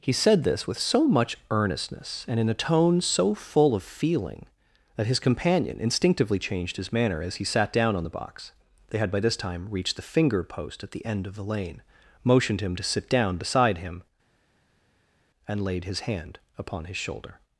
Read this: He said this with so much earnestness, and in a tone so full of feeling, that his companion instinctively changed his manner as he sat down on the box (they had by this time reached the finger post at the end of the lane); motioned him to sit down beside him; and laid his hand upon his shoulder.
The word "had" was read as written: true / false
true